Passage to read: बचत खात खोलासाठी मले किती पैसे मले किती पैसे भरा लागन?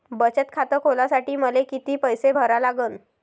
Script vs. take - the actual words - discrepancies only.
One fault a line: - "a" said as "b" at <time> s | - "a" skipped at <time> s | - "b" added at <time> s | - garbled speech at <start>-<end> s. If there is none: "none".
- "मले किती पैसे" skipped at 2.3 s